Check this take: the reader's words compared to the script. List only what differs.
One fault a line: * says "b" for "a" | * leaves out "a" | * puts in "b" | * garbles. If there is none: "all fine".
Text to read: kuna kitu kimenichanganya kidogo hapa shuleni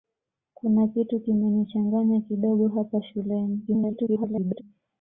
* garbles